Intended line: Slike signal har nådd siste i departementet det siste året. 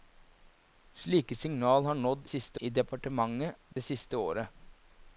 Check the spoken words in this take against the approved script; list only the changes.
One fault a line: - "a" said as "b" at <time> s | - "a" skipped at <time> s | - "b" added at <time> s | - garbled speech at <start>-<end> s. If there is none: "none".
none